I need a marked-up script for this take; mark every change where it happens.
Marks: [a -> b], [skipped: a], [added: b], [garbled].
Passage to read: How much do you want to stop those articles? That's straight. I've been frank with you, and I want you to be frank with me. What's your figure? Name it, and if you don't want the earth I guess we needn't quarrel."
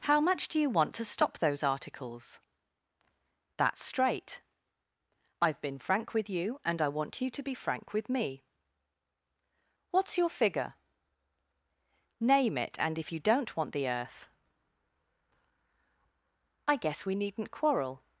How much do you want to stop those articles? That's straight. I've been frank with you, and I want you to be frank with me. What's your figure? Name it, and if you don't want the earth I guess we needn't quarrel."